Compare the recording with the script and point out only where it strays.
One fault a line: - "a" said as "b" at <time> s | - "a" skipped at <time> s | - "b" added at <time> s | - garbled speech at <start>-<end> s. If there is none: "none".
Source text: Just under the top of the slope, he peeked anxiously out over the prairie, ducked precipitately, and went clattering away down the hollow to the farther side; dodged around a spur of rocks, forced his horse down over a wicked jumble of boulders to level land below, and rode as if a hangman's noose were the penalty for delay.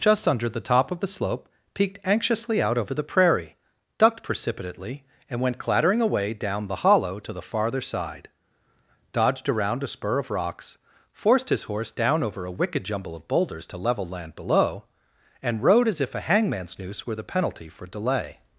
- "he" skipped at 1.5 s